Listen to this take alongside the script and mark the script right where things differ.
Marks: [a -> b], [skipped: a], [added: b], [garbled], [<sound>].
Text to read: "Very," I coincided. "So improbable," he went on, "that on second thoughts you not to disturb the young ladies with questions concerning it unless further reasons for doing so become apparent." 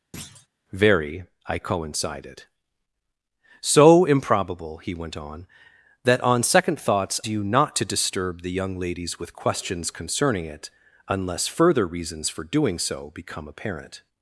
[thud] "Very," I coincided. "So improbable," he went on, "that on second thoughts you not to disturb the young ladies with questions concerning it unless further reasons for doing so become apparent."